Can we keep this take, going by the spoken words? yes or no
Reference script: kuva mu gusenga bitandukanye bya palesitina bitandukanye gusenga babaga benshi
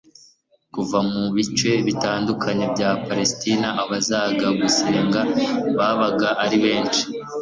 no